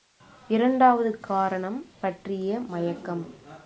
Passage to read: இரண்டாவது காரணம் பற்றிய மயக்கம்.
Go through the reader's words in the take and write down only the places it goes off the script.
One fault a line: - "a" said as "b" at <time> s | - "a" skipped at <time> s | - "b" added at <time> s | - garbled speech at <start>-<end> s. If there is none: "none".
none